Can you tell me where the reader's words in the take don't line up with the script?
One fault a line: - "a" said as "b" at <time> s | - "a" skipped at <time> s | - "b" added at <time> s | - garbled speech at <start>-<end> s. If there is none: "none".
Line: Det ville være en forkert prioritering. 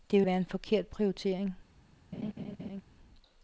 - "ville" skipped at 0.2 s